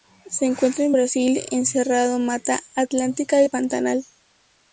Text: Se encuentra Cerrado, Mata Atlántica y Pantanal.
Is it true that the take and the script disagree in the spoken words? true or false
true